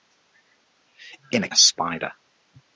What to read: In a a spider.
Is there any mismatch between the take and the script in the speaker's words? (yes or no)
no